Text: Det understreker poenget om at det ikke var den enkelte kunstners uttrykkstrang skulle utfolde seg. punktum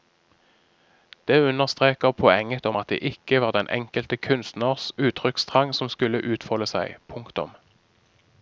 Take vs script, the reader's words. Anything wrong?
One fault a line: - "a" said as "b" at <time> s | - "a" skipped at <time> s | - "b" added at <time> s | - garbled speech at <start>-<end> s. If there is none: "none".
- "som" added at 5.7 s